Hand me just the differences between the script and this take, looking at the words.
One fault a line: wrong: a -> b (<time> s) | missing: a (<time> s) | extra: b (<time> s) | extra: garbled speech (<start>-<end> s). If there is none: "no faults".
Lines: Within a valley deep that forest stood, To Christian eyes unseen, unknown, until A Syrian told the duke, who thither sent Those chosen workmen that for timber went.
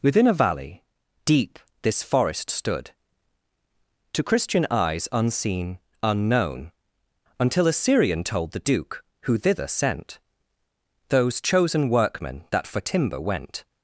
wrong: that -> this (1.8 s)